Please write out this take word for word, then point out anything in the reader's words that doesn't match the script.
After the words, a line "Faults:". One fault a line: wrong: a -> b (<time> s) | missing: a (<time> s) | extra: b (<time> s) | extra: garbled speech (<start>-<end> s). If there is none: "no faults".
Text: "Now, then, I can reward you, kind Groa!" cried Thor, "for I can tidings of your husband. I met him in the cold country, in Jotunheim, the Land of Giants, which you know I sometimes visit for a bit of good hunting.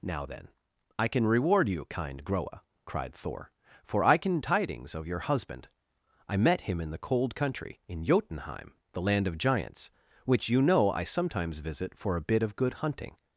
"Now, then, I can reward you, kind Groa!" cried Thor, "for I can tidings of your husband. I met him in the cold country, in Jotunheim, the Land of Giants, which you know I sometimes visit for a bit of good hunting.
Faults:
no faults